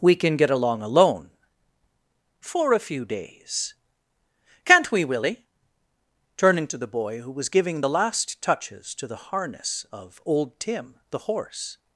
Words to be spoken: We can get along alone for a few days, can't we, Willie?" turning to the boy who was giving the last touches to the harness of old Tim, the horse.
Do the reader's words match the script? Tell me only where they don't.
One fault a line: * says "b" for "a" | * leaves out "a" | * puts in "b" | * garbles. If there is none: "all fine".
all fine